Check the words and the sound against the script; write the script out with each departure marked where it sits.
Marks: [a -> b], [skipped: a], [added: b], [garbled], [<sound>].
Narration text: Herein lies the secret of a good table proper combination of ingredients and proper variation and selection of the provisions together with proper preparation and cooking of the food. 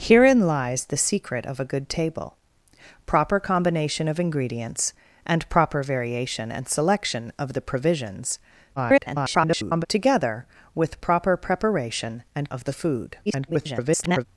Herein lies the secret of a good table proper combination of ingredients and proper variation and selection of the provisions [garbled] together with proper preparation and [skipped: cooking] of the food. [garbled]